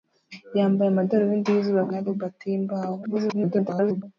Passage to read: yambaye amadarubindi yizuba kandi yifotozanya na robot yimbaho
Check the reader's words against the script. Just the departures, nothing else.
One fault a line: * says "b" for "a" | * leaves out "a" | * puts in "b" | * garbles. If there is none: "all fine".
* leaves out "kandi yifotozanya"
* garbles